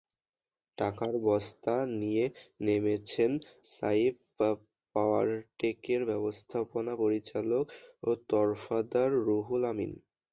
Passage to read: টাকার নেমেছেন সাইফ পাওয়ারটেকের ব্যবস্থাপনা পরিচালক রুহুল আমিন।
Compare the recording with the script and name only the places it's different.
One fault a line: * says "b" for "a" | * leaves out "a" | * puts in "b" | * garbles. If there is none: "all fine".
* puts in "বস্তা নিয়ে"
* puts in "তরফদার"